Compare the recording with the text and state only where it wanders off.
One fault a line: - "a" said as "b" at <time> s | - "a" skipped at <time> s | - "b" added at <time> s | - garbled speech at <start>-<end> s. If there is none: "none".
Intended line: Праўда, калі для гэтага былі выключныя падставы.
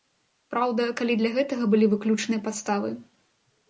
none